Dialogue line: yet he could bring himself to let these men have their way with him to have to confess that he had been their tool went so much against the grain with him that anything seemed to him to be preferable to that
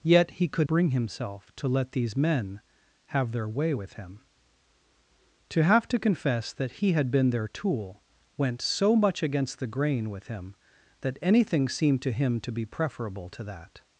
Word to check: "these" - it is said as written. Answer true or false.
true